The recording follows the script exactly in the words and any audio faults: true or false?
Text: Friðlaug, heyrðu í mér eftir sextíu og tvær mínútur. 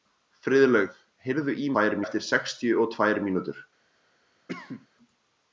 false